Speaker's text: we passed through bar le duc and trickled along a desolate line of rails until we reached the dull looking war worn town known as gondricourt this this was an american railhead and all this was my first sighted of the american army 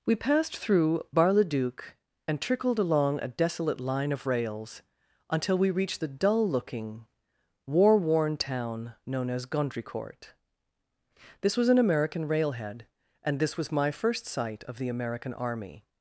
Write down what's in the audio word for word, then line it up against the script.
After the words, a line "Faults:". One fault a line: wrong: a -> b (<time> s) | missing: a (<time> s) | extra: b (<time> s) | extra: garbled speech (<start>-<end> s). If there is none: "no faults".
we passed through bar le duc and trickled along a desolate line of rails until we reached the dull looking war worn town known as gondricourt this was an american railhead and this was my first sight of the american army
Faults:
missing: this (11.6 s)
missing: all (13.4 s)
wrong: sighted -> sight (14.3 s)